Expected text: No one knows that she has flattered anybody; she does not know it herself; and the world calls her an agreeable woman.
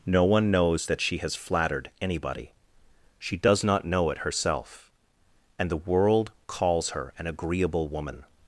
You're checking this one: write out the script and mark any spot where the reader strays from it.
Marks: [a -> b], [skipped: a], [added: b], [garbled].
No one knows that she has flattered anybody; she does not know it herself; and the world calls her an agreeable woman.